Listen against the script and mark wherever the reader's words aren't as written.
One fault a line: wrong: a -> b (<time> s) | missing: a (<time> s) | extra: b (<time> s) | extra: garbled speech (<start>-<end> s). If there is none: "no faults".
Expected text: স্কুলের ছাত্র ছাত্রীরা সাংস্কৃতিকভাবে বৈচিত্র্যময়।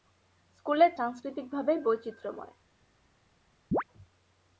missing: ছাত্র ছাত্রীরা (0.9 s)